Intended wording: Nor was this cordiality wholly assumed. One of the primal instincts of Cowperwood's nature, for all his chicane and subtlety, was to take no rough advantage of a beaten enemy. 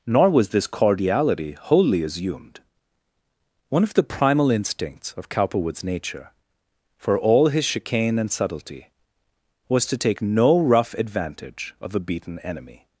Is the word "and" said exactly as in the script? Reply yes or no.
yes